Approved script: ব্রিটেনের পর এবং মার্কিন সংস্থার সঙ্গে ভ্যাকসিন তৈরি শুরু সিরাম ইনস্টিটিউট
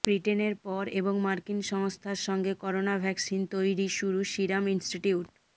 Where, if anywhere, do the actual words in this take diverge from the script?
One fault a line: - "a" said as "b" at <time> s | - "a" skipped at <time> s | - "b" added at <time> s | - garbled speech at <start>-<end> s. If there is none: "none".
- "করোনা" added at 2.6 s